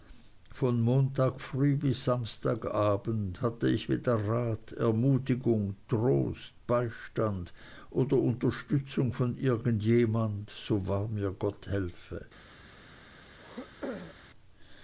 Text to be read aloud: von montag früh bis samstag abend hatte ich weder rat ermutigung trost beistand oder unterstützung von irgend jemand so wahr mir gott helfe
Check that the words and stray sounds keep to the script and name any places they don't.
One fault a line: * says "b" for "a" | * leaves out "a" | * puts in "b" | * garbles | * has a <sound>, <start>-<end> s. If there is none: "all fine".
* has a throat clearing, 13.4-14.2 s